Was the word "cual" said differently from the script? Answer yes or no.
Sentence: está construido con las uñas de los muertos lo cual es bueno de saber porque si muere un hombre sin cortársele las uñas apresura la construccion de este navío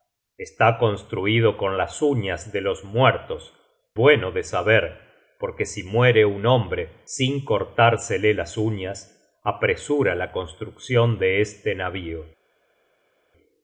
yes